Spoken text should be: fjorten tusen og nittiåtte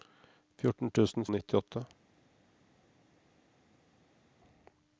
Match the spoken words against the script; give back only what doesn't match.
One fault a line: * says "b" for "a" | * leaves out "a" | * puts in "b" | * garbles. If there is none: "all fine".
all fine